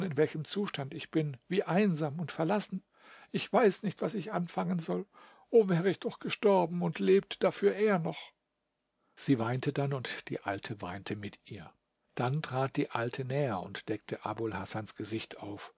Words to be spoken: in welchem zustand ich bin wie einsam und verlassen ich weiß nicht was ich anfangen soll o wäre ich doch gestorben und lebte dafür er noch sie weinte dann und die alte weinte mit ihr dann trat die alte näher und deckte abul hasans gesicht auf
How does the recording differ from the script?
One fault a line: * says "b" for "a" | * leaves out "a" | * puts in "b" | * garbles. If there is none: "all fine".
all fine